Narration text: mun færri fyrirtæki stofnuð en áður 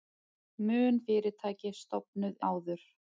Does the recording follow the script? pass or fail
fail